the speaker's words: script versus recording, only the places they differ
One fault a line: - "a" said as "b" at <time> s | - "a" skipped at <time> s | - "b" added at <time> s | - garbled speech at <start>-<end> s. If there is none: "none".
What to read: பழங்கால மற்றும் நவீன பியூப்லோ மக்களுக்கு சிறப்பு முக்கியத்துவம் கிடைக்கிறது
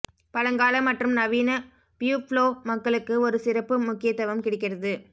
- "ஒரு" added at 3.3 s